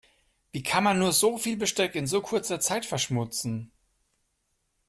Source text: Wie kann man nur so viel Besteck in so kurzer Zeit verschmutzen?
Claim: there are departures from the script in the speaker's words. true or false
false